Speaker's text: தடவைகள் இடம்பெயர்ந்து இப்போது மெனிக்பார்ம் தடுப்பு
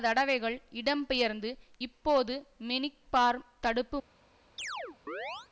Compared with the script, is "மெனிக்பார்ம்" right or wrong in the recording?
right